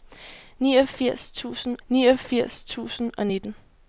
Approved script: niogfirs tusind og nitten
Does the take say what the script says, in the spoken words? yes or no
no